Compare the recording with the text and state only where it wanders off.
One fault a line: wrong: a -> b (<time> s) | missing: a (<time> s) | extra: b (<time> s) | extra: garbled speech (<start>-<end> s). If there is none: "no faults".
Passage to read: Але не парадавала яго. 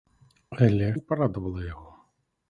no faults